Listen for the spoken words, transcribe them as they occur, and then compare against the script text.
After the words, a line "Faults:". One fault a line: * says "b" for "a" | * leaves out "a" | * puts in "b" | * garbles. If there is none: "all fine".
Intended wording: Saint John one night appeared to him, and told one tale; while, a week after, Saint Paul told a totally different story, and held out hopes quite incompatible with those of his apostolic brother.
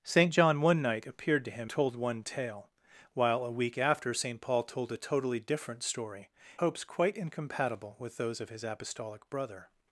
Saint John one night appeared to him, told one tale; while, a week after, Saint Paul told a totally different story, hopes quite incompatible with those of his apostolic brother.
Faults:
* leaves out "and"
* leaves out "and held out"